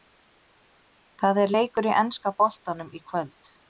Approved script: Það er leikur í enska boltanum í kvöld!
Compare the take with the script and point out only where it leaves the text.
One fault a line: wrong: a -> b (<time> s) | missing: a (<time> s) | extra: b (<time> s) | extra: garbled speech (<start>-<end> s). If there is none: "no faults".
no faults